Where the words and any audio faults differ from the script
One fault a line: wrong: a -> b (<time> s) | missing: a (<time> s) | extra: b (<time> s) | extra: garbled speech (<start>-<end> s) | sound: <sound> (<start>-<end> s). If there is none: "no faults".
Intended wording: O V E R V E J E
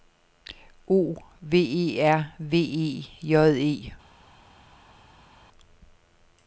no faults